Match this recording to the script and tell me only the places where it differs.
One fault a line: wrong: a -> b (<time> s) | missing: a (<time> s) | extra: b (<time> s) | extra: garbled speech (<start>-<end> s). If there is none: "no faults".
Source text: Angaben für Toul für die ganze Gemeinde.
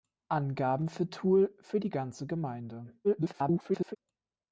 extra: garbled speech (3.0-4.0 s)